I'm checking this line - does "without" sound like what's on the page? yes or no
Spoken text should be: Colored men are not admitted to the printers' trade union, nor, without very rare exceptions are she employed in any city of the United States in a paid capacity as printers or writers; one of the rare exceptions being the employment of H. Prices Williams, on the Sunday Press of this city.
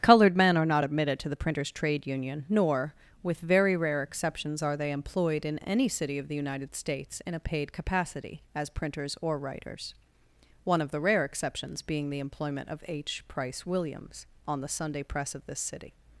no